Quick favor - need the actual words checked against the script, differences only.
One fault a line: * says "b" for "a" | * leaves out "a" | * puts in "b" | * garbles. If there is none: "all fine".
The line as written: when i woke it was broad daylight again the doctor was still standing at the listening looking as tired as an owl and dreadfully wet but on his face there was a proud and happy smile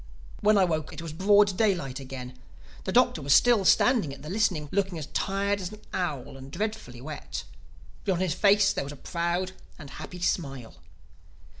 all fine